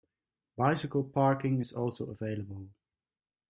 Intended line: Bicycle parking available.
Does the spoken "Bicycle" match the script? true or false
true